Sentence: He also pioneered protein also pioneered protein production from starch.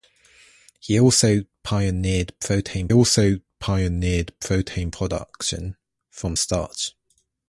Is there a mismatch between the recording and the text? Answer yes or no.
no